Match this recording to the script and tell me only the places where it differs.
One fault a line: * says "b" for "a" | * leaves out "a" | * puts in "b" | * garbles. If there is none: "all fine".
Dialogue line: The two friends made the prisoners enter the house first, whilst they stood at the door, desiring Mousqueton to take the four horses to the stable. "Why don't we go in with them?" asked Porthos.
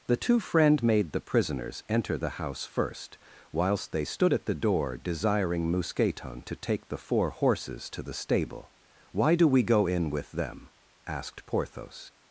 * says "friend" for "friends"
* says "do" for "don't"